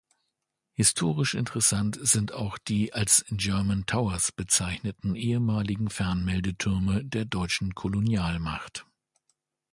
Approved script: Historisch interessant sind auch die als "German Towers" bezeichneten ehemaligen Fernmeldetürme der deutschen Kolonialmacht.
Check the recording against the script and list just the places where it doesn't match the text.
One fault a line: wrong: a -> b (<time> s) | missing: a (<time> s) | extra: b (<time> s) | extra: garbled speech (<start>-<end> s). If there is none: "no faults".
no faults